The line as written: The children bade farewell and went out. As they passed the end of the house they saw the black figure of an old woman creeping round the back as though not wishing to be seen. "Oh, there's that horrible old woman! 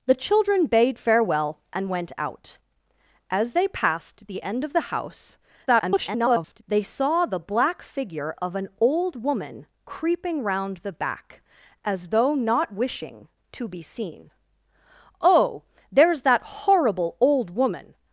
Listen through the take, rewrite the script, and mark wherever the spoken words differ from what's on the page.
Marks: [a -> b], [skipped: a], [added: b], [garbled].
The children bade farewell and went out. As they passed the end of the house [garbled] they saw the black figure of an old woman creeping round the back as though not wishing to be seen. "Oh, there's that horrible old woman!